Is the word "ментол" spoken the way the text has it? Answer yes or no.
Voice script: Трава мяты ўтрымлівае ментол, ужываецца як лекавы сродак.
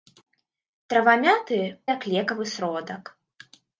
no